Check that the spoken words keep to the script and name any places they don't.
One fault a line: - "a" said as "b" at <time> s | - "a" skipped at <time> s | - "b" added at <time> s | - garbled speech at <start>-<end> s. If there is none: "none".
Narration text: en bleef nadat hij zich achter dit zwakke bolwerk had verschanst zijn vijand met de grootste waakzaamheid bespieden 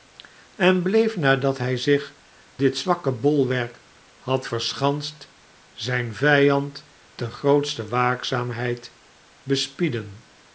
- "achter" skipped at 2.1 s
- "met" skipped at 6.8 s